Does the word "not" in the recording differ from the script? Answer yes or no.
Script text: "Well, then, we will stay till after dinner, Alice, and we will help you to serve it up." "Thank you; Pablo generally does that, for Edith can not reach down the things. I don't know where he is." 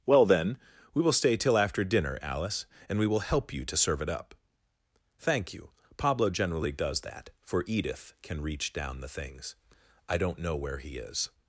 yes